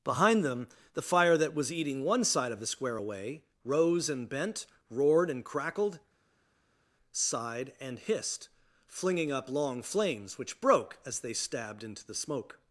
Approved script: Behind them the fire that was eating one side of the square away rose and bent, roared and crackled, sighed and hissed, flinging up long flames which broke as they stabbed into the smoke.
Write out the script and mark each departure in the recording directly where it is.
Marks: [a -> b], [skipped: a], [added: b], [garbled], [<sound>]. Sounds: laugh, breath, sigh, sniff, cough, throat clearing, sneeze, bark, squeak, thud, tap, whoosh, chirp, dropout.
Behind them the fire that was eating one side of the square away rose and bent, roared and crackled, sighed and hissed, flinging up long flames which broke as they stabbed into the smoke.